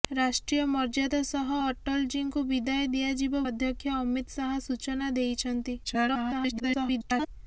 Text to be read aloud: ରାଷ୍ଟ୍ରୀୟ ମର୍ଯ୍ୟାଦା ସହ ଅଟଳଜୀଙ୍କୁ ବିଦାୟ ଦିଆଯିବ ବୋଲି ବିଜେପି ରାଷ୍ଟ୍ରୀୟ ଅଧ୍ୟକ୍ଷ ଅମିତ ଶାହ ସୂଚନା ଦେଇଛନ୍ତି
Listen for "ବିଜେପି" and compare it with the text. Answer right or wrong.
wrong